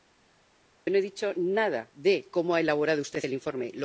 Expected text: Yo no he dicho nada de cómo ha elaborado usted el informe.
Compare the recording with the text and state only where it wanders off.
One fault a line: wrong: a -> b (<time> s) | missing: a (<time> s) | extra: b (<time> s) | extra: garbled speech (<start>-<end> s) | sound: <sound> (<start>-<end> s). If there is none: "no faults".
no faults